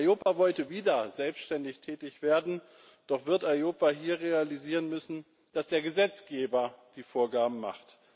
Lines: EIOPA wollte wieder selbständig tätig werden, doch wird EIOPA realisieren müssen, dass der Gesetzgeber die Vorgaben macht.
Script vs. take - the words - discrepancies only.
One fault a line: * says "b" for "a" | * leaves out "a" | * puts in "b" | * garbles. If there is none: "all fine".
* puts in "hier"